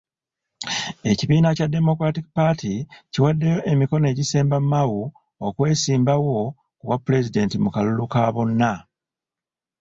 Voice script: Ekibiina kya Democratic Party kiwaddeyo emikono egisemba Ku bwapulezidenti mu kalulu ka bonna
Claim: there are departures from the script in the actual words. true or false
true